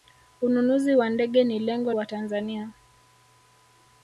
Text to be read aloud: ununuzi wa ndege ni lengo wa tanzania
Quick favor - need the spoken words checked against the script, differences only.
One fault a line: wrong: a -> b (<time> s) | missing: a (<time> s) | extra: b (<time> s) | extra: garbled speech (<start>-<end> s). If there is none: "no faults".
no faults